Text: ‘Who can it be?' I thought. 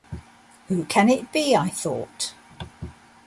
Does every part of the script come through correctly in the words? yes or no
yes